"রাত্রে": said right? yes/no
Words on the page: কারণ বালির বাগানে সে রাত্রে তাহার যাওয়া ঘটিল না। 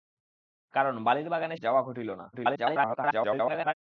no